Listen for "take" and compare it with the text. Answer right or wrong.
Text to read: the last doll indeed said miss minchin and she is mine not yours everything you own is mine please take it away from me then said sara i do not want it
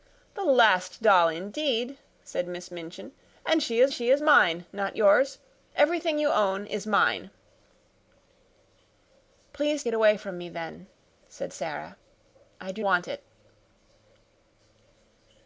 wrong